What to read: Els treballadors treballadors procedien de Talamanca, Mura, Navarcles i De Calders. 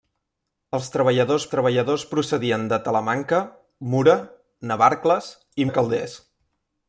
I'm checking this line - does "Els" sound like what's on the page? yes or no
yes